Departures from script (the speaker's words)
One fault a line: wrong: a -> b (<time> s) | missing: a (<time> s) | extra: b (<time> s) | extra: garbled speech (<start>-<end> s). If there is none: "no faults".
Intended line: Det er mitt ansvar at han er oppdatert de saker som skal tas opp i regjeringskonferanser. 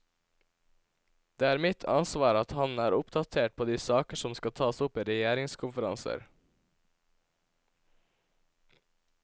extra: på (3.6 s)